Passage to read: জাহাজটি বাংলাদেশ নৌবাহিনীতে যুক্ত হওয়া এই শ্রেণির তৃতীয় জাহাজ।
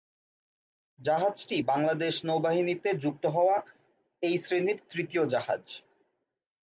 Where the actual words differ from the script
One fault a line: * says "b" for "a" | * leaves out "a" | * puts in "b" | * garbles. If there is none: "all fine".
all fine